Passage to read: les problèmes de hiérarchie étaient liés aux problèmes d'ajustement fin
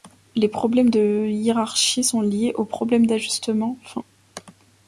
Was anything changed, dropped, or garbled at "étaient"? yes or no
yes